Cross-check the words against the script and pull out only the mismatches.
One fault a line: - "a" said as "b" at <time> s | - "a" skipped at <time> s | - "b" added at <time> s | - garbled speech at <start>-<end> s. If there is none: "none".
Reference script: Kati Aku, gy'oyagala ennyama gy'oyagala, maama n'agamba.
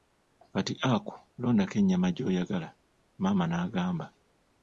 - "gy'oyagala" said as "londako" at 1.4 s